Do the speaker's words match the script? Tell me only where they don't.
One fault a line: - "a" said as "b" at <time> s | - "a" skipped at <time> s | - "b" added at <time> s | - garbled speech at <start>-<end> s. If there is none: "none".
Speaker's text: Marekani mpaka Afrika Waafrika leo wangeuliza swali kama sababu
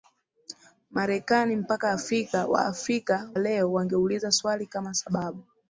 none